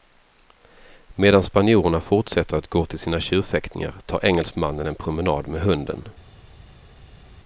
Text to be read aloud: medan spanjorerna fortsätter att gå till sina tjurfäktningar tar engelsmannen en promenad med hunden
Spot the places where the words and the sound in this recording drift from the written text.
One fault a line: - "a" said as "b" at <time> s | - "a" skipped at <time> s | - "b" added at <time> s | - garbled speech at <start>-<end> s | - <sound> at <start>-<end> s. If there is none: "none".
none